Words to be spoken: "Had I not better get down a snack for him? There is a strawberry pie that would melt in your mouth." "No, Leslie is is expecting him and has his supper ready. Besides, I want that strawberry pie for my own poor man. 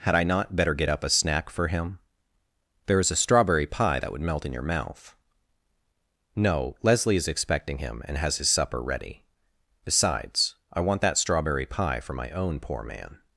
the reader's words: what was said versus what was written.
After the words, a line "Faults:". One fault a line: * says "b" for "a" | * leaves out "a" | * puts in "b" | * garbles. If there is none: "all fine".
"Had I not better get up a snack for him? There is a strawberry pie that would melt in your mouth." "No, Leslie is expecting him and has his supper ready. Besides, I want that strawberry pie for my own poor man.
Faults:
* says "up" for "down"
* leaves out "is"